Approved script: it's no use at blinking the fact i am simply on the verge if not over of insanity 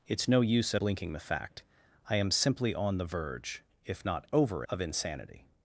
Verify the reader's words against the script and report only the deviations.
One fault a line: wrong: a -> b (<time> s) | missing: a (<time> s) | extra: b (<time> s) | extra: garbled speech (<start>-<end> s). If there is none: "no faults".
no faults